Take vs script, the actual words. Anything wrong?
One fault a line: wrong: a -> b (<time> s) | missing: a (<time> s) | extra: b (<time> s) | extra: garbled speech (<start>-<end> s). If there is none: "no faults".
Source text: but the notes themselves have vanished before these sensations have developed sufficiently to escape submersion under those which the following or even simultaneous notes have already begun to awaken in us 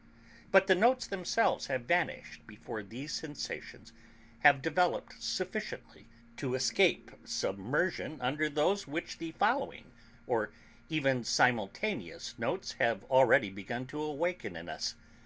no faults